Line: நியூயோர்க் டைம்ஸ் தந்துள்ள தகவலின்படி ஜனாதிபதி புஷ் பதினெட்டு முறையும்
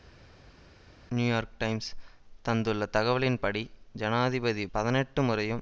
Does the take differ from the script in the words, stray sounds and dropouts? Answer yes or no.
yes